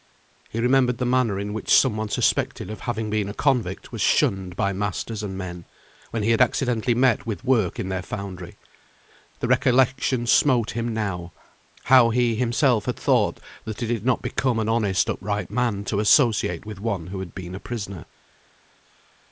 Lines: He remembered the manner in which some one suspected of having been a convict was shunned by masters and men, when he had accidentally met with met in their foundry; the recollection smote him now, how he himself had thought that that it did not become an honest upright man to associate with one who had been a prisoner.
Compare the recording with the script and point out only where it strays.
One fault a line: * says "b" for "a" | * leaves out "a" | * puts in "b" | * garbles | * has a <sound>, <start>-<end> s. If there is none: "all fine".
* says "work" for "met"
* leaves out "that"